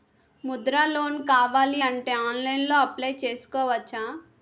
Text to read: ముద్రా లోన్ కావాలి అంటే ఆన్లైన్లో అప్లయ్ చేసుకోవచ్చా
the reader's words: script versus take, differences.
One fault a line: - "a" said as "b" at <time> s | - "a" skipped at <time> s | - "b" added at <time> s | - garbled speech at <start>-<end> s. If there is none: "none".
none